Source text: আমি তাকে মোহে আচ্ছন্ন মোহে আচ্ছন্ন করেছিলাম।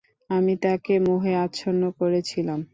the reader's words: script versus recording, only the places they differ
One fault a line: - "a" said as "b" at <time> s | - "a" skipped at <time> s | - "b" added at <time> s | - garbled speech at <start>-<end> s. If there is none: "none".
- "মোহে আচ্ছন্ন" skipped at 1.8 s